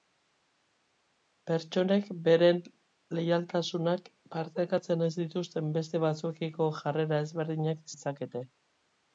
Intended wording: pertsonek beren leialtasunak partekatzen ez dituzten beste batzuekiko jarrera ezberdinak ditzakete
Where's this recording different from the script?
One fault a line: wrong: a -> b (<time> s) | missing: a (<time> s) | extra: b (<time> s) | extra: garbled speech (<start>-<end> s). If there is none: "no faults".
no faults